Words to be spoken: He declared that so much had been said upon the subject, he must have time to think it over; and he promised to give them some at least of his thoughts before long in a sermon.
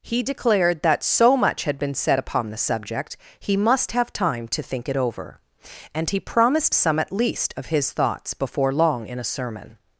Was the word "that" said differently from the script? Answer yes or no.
no